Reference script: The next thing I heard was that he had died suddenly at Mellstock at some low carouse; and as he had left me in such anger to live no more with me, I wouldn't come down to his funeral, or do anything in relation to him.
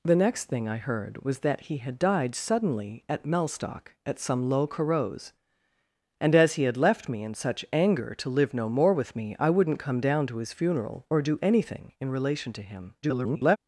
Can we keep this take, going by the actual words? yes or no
no